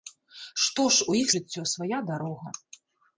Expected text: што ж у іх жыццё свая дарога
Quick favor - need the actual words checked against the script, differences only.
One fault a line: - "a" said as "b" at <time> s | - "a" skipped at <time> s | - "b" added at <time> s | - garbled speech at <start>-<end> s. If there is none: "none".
none